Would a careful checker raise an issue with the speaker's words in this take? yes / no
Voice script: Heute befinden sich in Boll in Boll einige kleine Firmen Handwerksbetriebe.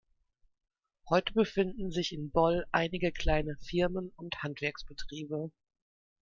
yes